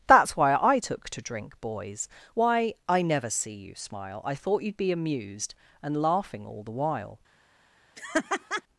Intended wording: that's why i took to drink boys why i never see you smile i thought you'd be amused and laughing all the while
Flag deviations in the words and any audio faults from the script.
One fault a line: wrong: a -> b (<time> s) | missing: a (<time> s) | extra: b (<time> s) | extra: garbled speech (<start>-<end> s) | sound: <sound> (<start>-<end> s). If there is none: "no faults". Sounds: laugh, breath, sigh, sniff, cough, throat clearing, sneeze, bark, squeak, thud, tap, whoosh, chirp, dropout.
sound: laugh (8.0-8.6 s)